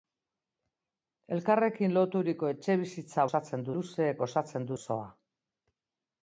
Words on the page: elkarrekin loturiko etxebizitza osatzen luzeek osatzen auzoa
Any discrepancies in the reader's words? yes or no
no